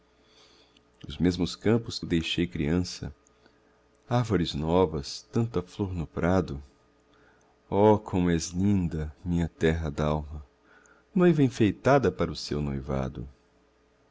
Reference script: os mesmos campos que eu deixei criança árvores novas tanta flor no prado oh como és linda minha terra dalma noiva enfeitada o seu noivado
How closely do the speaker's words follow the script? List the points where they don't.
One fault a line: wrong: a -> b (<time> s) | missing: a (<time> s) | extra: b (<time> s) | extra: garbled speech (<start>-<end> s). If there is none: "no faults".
extra: para (12.1 s)